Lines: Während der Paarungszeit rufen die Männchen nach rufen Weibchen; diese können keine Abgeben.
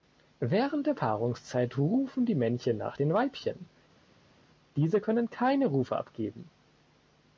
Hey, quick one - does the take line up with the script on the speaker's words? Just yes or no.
no